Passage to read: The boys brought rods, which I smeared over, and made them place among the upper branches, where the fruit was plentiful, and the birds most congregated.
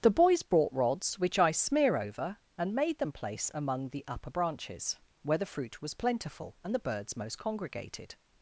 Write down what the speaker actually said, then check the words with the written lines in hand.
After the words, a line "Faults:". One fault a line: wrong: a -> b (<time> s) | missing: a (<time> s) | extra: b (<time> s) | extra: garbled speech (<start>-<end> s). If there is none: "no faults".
The boys brought rods, which I smear over, and made them place among the upper branches, where the fruit was plentiful, and the birds most congregated.
Faults:
wrong: smeared -> smear (1.5 s)